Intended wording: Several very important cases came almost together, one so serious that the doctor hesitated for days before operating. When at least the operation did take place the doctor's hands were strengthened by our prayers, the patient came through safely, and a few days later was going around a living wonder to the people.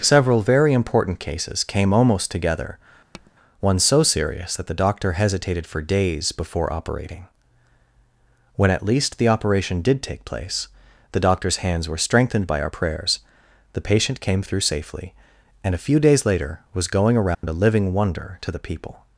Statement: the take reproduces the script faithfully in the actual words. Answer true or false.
true